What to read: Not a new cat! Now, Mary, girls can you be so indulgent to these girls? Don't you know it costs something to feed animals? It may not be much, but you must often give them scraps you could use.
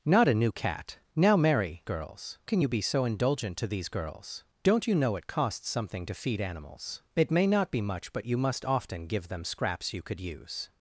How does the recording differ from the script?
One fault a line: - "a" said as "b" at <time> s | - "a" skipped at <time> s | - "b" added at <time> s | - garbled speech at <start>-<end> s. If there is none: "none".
none